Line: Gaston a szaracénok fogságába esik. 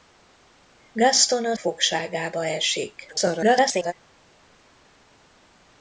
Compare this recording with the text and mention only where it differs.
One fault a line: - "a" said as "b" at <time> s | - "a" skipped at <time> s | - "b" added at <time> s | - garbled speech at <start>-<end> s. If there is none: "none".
- "szaracénok" skipped at 1.6 s
- garbled speech at 3.1-3.9 s